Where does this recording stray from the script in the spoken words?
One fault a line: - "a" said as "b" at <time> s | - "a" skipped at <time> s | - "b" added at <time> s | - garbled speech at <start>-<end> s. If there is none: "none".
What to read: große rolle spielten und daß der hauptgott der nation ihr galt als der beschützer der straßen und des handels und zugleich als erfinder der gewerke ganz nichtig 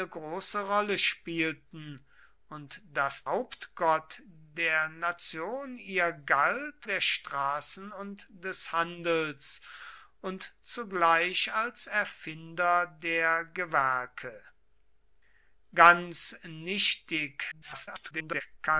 - "der" skipped at 3.3 s
- "als der beschützer" skipped at 6.9 s
- garbled speech at 17.5-18.4 s